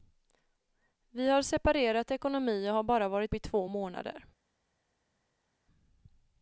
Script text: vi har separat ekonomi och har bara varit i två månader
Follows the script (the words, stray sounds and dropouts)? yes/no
yes